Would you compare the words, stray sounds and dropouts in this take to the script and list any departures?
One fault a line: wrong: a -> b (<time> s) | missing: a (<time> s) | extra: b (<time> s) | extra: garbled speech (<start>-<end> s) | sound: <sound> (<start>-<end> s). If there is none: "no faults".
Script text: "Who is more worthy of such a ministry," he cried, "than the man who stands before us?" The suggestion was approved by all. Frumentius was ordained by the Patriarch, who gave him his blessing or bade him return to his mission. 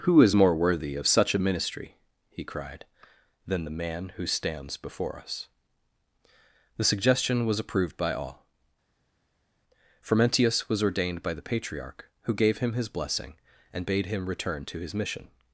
wrong: or -> and (13.7 s)